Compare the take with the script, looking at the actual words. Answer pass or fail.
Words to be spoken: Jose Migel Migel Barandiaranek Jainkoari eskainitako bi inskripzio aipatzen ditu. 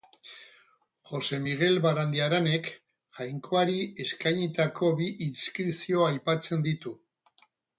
fail